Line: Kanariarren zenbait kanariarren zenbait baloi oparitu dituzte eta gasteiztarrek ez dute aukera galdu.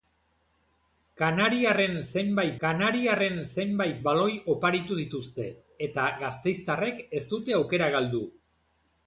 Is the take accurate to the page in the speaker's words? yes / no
yes